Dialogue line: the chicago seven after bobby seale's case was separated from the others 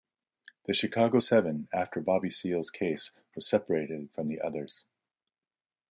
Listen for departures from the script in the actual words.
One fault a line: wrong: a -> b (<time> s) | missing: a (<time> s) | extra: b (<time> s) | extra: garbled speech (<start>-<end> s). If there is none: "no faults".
no faults